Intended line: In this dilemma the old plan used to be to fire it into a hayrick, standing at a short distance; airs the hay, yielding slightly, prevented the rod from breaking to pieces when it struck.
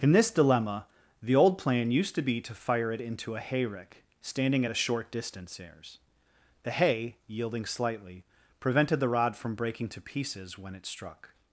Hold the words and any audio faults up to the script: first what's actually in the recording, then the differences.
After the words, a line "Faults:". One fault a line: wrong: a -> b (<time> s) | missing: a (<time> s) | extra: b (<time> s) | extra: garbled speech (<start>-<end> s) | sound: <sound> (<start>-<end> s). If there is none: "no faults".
In this dilemma the old plan used to be to fire it into a hayrick, standing at a short distance; airs the hay, yielding slightly, prevented the rod from breaking to pieces when it struck.
Faults:
no faults